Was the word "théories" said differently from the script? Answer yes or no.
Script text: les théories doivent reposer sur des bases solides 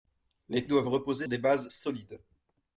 yes